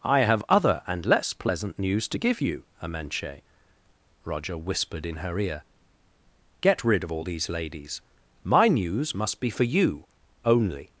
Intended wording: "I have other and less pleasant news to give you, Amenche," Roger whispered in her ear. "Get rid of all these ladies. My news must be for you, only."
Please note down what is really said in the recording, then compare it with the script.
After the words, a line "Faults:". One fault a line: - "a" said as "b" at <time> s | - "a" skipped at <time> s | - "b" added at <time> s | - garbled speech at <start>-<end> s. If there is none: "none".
"I have other and less pleasant news to give you, Amenche," Roger whispered in her ear. "Get rid of all these ladies. My news must be for you, only."
Faults:
none